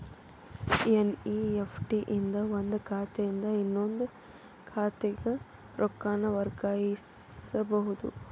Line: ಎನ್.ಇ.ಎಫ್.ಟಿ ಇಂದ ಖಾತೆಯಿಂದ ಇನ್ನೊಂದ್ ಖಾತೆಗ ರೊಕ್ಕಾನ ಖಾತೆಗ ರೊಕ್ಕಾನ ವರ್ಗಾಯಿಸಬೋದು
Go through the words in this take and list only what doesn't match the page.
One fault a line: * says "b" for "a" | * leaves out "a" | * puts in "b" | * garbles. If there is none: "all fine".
* puts in "ಒಂದ್"
* leaves out "ಖಾತೆಗ ರೊಕ್ಕಾನ"